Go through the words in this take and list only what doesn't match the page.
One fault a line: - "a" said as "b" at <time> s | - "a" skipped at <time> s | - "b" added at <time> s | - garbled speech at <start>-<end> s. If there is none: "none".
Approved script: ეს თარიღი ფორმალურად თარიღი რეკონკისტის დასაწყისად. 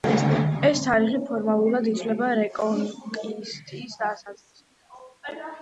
- "თარიღი" said as "ითვლება" at 1.9 s